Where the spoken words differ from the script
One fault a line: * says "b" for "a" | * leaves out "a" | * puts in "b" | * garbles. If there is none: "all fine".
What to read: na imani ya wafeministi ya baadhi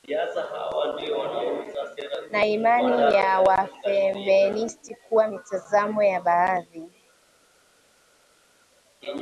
* puts in "kuwa mitazamo"